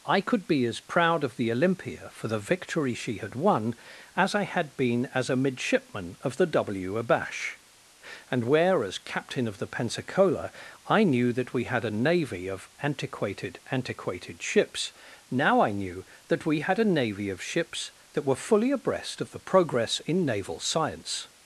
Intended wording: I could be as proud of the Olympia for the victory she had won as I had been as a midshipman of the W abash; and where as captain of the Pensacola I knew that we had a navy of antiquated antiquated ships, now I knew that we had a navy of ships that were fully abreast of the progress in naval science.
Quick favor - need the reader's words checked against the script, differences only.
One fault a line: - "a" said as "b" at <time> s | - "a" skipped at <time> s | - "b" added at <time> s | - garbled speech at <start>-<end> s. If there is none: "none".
none